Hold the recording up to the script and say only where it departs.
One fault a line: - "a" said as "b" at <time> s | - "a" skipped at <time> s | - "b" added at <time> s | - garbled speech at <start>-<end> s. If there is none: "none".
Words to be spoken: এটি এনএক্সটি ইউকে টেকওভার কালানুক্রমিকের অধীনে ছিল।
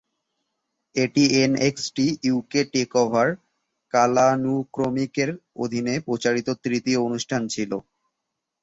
- "প্রচারিত তৃতীয় অনুষ্ঠান" added at 6.1 s